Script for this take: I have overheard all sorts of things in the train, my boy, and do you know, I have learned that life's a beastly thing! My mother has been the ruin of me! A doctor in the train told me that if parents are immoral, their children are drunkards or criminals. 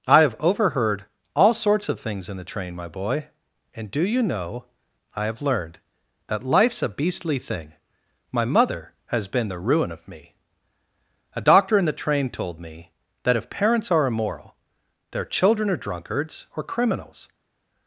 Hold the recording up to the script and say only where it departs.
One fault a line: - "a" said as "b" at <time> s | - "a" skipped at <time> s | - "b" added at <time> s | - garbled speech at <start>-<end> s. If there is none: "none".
none